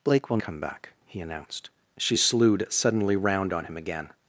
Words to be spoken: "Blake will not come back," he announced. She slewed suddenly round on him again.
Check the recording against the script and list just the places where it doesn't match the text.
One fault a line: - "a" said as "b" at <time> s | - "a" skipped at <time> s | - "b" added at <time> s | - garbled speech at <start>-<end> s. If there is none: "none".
- "not" skipped at 0.4 s